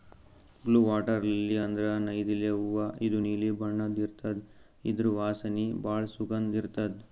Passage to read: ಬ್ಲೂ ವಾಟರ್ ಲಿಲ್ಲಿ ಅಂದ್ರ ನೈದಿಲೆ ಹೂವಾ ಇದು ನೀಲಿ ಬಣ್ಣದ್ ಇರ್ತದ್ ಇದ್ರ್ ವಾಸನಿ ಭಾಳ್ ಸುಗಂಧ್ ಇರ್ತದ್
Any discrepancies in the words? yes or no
no